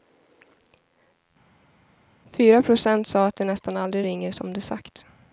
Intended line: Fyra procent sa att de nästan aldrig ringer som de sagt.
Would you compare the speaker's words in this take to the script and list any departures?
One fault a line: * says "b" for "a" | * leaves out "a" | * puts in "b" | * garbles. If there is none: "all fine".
all fine